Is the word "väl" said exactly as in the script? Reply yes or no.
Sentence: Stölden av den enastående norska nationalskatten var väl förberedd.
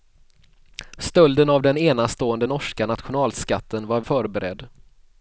no